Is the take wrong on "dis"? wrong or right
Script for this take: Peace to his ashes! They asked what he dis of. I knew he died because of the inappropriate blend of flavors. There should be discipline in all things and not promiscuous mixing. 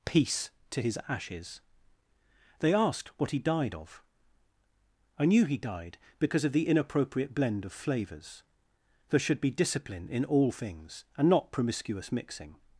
wrong